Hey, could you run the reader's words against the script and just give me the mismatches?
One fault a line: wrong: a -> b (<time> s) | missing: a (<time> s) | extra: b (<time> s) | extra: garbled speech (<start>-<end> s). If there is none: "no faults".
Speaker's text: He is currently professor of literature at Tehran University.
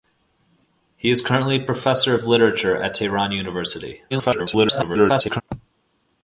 extra: garbled speech (4.1-5.4 s)